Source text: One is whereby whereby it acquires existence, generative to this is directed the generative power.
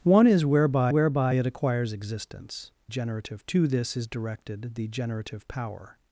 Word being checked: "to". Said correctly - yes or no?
yes